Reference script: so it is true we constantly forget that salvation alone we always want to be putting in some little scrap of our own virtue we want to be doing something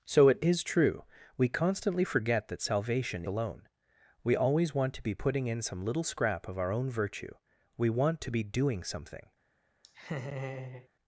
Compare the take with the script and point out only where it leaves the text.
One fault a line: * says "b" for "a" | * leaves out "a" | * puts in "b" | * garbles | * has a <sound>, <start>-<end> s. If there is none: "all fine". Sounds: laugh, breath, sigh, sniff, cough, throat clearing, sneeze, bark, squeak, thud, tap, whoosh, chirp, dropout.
* has a laugh, 9.8-10.9 s